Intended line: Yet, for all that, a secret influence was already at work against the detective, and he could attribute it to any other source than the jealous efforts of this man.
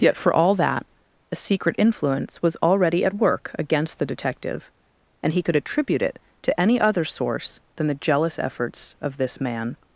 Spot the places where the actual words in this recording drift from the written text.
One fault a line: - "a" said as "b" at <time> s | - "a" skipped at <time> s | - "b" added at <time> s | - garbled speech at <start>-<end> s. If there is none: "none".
none